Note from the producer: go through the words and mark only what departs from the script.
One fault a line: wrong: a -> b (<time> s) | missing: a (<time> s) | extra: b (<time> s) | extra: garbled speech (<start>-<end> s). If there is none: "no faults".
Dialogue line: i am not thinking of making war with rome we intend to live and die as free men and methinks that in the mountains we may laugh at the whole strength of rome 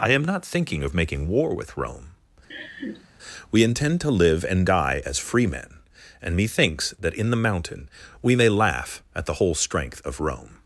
wrong: mountains -> mountain (7.4 s)